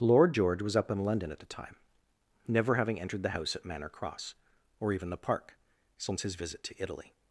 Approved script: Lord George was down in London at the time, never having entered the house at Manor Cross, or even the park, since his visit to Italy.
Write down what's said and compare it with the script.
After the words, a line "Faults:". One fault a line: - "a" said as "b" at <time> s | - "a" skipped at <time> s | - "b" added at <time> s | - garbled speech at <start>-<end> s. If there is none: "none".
Lord George was up in London at the time, never having entered the house at Manor Cross, or even the park, since his visit to Italy.
Faults:
- "down" said as "up" at 0.8 s